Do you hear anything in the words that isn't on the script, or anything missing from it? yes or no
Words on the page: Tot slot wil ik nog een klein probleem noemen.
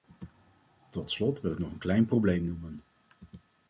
no